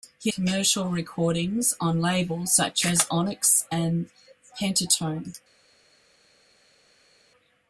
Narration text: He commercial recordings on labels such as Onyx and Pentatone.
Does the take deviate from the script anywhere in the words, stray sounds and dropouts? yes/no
no